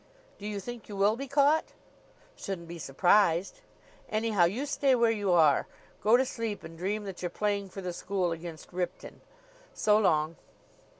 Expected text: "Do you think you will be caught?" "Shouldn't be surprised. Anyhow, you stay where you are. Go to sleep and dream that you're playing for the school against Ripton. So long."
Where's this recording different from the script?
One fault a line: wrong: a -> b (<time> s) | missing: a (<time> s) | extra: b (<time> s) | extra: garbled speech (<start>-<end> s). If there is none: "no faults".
no faults